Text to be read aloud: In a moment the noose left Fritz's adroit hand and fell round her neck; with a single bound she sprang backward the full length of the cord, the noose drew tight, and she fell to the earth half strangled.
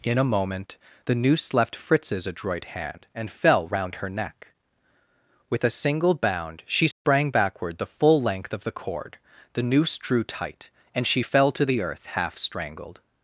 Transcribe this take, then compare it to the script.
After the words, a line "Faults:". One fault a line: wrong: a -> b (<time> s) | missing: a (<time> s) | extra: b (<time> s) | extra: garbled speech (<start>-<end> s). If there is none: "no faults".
In a moment the noose left Fritz's adroit hand and fell round her neck; with a single bound she sprang backward the full length of the cord, the noose drew tight, and she fell to the earth half strangled.
Faults:
no faults